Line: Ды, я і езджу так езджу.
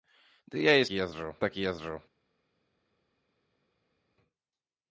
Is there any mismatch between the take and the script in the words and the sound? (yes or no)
no